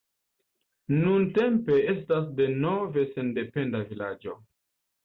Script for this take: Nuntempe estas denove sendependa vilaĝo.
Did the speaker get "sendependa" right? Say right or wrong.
right